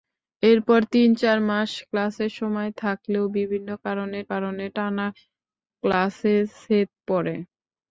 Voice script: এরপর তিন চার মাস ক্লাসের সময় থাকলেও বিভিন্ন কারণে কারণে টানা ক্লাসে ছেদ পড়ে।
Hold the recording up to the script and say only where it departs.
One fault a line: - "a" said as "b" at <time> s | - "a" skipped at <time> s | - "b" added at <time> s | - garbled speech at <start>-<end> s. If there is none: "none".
none